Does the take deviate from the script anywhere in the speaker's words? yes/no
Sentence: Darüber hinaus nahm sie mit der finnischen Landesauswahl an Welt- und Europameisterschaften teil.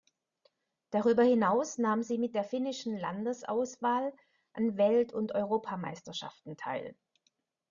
no